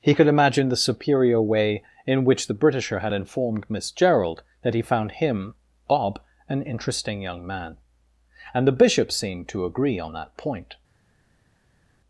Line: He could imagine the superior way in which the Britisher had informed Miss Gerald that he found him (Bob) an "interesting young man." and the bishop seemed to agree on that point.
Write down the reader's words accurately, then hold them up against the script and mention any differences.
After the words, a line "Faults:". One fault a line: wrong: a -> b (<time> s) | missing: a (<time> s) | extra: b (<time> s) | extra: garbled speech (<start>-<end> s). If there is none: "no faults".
He could imagine the superior way in which the Britisher had informed Miss Gerald that he found him (Bob) an "interesting young man." and the bishop seemed to agree on that point.
Faults:
no faults